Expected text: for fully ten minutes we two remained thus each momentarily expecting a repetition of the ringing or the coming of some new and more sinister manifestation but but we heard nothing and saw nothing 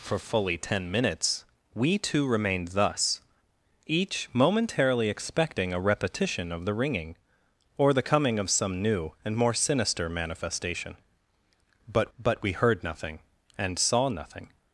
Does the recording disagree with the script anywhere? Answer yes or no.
no